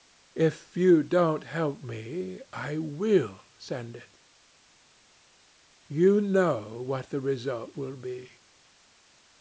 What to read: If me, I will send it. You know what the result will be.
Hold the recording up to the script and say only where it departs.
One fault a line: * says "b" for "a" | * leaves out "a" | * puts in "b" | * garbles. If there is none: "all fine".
* puts in "you don't help"